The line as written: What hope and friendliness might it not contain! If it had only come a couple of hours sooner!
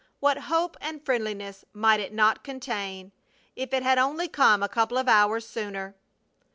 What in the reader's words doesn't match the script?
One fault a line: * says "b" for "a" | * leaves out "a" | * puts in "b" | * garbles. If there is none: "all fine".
all fine